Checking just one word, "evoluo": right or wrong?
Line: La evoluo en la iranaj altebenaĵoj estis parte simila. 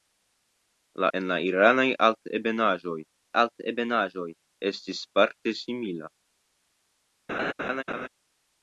wrong